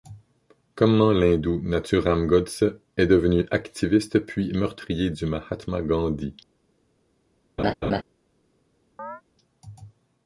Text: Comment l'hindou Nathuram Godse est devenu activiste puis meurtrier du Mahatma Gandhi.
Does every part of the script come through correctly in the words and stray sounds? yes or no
no